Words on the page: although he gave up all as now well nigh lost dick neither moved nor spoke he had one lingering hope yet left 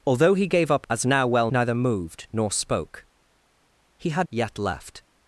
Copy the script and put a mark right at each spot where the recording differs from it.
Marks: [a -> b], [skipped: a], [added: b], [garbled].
although he gave up [skipped: all] as now well [skipped: nigh lost dick] neither moved nor spoke he had [skipped: one lingering hope] yet left